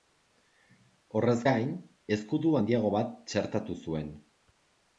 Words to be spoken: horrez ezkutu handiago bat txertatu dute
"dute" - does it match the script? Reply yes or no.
no